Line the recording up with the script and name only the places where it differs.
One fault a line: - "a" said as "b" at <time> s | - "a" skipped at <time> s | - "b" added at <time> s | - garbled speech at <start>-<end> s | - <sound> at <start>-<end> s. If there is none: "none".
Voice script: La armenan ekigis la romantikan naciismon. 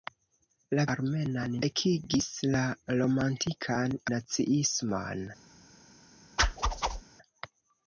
- whoosh at 6.4-7.0 s